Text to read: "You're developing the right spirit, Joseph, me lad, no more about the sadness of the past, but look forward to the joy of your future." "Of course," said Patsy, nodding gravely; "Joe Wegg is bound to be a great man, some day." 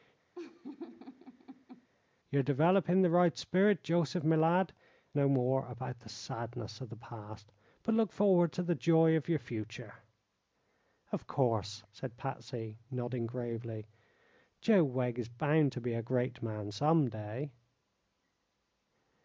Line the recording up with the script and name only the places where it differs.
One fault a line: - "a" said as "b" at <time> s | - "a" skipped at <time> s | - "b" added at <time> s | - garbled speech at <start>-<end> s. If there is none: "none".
none